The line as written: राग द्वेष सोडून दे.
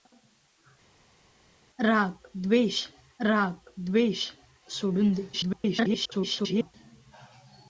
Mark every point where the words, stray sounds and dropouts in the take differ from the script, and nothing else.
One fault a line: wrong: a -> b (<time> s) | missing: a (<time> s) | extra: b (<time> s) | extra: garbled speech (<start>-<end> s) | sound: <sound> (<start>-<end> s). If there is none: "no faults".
extra: राग द्वेष (3.2 s)
extra: garbled speech (5.3-6.7 s)